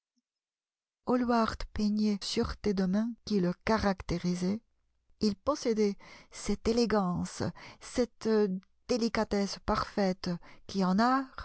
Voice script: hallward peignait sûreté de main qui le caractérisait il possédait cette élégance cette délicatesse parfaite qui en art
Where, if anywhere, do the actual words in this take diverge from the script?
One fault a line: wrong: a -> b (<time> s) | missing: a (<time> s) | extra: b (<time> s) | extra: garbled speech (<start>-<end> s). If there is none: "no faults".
no faults